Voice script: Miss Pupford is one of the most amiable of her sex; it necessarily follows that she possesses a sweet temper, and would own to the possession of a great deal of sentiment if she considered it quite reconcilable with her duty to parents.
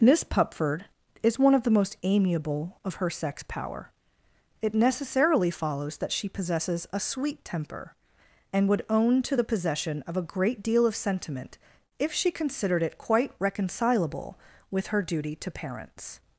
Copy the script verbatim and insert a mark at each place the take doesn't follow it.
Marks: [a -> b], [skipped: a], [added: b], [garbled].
Miss Pupford is one of the most amiable of her sex; [added: power] it necessarily follows that she possesses a sweet temper, and would own to the possession of a great deal of sentiment if she considered it quite reconcilable with her duty to parents.